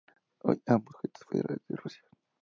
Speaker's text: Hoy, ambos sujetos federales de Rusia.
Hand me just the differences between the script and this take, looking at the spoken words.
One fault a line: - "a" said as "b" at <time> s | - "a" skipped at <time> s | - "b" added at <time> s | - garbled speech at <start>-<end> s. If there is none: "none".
none